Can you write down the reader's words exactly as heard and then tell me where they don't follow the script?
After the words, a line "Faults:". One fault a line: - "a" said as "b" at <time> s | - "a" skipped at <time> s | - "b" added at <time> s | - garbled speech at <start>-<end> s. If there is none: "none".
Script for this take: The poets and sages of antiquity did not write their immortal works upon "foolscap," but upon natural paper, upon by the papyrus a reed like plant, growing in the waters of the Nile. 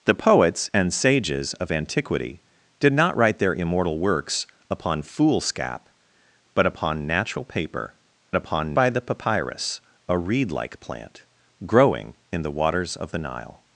The poets and sages of antiquity did not write their immortal works upon "foolscap," but upon natural paper, upon by the papyrus a reed like plant, growing in the waters of the Nile.
Faults:
none